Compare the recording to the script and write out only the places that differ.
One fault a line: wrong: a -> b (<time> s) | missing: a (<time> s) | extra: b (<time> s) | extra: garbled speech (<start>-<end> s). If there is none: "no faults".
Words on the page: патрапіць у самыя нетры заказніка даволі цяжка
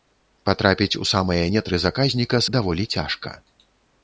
no faults